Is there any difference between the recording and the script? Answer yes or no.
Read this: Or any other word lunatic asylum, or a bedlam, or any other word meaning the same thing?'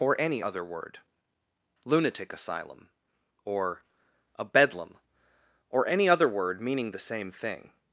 no